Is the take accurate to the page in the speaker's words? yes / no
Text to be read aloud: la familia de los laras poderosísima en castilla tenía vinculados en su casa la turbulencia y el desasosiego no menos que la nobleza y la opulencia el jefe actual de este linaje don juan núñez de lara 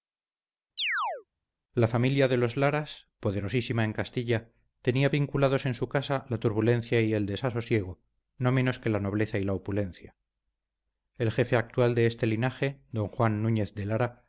yes